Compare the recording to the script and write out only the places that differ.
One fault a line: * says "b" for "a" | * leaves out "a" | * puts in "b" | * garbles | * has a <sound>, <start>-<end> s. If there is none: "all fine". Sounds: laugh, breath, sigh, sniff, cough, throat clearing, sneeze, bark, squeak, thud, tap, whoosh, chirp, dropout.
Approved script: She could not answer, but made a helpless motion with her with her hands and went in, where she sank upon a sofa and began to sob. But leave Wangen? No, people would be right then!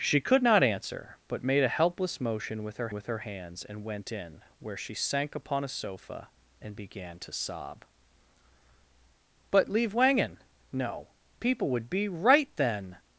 all fine